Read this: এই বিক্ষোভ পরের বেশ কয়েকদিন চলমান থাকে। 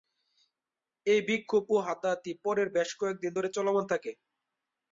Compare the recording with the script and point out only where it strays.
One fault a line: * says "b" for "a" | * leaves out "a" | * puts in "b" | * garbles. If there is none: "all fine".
* puts in "ও হাতাহাতি"
* puts in "ধরে"